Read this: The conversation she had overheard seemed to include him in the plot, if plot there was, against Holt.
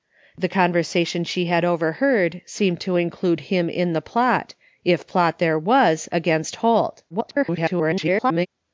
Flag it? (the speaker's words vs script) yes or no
yes